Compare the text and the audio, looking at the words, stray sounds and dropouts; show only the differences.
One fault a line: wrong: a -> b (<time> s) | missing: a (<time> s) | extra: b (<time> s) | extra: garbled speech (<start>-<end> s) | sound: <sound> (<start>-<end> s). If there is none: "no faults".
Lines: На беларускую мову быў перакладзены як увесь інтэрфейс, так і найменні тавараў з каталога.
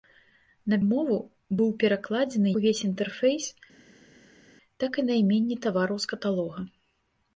missing: беларускую (0.8 s)
missing: як (2.5 s)